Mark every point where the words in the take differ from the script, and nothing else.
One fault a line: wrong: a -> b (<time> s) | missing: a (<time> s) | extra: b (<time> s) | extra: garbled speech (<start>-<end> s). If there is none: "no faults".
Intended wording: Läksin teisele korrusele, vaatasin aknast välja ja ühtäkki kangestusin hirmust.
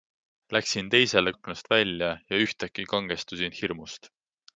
missing: korrusele vaatasin (1.3 s)